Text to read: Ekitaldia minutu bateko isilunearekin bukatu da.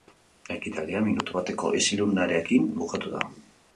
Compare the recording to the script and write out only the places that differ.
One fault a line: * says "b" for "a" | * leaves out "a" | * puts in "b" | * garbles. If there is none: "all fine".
all fine